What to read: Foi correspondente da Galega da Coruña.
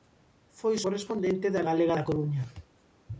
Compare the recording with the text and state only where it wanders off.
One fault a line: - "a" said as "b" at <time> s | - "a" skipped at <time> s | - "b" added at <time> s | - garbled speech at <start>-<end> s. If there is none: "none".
none